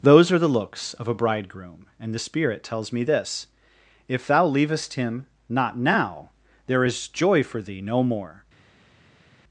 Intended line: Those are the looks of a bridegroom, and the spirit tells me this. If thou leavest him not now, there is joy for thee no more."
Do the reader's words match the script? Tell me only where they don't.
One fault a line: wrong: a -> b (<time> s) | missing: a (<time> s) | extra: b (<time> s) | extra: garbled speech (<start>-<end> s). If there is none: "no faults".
no faults